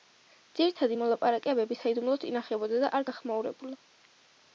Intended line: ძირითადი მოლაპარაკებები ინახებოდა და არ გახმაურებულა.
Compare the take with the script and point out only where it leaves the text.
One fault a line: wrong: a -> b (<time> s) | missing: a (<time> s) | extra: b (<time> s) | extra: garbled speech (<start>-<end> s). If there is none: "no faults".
extra: საიდუმლოდ (1.8 s)